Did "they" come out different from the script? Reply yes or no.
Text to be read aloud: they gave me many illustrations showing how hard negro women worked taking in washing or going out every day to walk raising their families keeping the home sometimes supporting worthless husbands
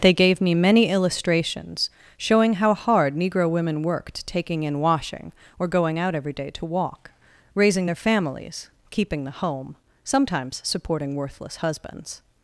no